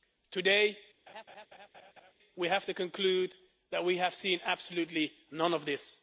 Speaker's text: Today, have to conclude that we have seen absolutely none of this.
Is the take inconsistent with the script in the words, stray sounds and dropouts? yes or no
yes